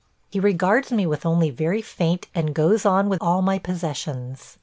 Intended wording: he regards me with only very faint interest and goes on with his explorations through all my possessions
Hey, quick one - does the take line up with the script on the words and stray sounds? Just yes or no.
no